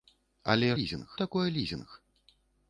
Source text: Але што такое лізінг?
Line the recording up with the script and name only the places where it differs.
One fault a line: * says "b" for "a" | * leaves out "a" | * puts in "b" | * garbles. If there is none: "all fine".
* says "лізінг" for "што"